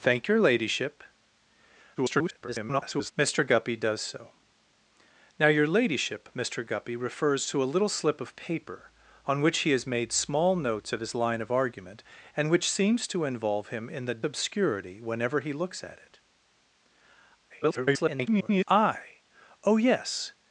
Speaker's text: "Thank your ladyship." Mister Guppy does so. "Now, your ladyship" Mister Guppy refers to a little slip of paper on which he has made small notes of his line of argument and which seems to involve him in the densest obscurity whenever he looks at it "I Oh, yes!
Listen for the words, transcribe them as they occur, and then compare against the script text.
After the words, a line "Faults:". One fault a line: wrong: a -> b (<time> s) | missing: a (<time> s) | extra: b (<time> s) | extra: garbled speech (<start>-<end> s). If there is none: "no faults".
"Thank your ladyship." [garbled] Mister Guppy does so. "Now, your ladyship" Mister Guppy refers to a little slip of paper on which he has made small notes of his line of argument and which seems to involve him in the obscurity whenever he looks at it [garbled] "I Oh, yes!
Faults:
extra: garbled speech (2.0-3.1 s)
missing: densest (14.2 s)
extra: garbled speech (17.5-18.6 s)